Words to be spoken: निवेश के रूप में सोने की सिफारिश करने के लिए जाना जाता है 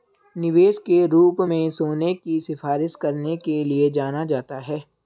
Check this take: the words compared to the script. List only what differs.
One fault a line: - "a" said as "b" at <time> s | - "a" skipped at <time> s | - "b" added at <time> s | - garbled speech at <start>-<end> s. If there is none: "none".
none